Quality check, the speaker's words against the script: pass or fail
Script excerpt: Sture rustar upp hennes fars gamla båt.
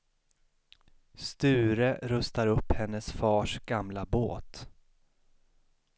pass